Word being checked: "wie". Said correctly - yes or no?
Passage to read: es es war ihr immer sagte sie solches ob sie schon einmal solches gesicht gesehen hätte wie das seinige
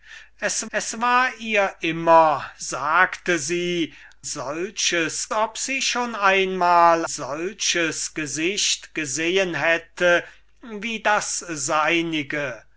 yes